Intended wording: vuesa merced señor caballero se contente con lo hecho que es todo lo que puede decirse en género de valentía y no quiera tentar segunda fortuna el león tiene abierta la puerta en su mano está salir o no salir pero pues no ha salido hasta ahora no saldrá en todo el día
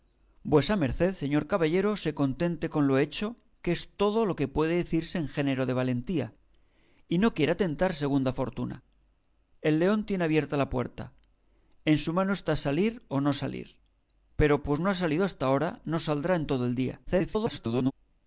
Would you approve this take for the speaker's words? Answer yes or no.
no